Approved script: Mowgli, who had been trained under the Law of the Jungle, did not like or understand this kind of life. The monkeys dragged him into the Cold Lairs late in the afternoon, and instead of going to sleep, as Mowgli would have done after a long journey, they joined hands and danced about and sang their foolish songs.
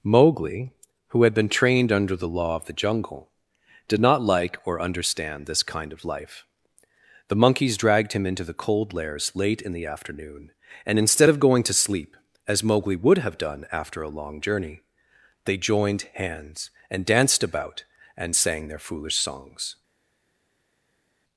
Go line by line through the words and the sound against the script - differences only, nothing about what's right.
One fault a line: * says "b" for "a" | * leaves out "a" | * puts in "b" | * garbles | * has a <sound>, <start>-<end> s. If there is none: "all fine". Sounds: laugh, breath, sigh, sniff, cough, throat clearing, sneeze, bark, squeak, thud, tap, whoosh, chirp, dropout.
all fine